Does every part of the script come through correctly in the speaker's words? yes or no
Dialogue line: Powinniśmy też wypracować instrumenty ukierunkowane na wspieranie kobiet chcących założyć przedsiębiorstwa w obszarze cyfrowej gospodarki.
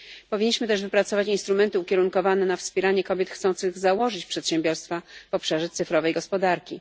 yes